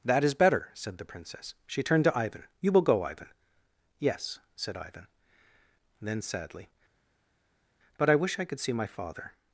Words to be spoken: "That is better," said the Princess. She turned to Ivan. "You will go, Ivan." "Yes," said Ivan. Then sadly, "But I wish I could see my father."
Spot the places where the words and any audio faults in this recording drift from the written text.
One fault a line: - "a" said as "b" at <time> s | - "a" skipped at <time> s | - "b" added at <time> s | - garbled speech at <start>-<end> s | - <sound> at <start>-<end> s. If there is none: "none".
none